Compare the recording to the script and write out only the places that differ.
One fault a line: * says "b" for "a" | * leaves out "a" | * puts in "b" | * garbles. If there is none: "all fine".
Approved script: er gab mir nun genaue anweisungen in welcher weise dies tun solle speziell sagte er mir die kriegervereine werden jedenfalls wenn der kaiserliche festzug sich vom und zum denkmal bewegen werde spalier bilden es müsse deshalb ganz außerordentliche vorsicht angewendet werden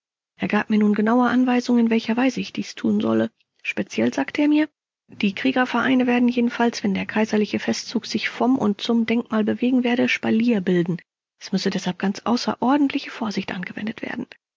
* puts in "ich"